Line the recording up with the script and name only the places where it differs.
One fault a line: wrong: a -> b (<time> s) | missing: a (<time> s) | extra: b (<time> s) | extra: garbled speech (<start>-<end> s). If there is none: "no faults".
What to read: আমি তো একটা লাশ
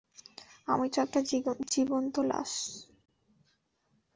extra: জীবন্ত (1.7 s)